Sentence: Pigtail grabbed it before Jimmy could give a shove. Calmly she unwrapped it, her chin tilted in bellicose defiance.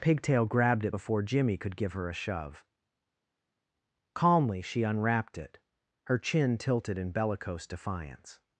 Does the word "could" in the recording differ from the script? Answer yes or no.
no